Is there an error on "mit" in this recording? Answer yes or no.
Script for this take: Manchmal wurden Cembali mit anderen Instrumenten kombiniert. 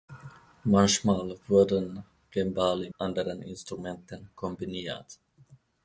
yes